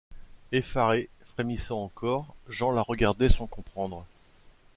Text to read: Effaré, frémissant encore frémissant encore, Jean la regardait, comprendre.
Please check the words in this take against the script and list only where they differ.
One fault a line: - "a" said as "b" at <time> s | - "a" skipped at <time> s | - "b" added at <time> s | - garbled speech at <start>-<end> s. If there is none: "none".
- "frémissant encore" skipped at 2.3 s
- "sans" added at 3.3 s